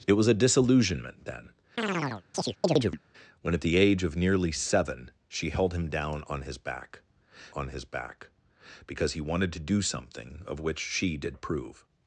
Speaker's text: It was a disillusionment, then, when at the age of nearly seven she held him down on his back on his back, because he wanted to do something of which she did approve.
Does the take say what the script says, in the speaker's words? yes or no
yes